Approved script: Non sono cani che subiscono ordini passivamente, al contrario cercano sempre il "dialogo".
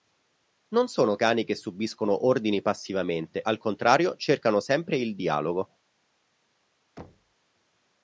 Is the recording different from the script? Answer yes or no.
no